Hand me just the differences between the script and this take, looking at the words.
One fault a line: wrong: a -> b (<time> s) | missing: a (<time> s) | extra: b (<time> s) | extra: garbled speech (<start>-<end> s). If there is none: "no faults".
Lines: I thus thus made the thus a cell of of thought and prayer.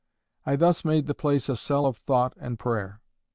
missing: thus (0.8 s)
wrong: thus -> place (1.1 s)
missing: of (2.0 s)